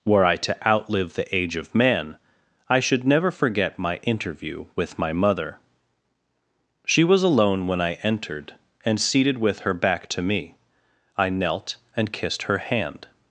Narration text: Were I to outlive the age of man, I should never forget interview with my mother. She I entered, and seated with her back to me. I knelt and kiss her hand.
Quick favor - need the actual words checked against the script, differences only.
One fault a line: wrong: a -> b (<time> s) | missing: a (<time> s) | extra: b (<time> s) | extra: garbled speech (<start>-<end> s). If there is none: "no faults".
extra: my (3.8 s)
extra: was alone when (7.0 s)
wrong: kiss -> kissed (12.1 s)